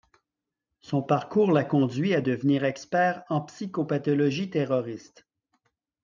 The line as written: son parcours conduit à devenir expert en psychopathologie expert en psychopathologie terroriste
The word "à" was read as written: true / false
true